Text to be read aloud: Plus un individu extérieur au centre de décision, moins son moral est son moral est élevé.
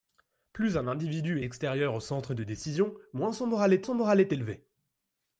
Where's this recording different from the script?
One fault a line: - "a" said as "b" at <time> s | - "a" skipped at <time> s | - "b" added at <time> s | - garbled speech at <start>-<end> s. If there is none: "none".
none